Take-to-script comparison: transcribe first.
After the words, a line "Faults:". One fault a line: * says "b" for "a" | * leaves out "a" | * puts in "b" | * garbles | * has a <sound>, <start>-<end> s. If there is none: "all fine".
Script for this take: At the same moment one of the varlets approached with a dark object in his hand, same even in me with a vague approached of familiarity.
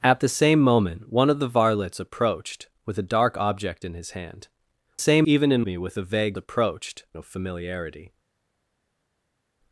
At the same moment one of the varlets approached with a dark object in his hand, same even in me with a vague approached of familiarity.
Faults:
all fine